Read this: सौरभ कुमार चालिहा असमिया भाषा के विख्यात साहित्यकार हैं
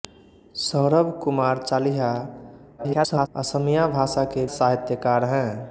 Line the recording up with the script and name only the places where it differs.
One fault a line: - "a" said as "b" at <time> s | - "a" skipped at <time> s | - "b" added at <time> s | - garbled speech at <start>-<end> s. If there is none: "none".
- garbled speech at 2.8-3.3 s
- "विख्यात" skipped at 4.5 s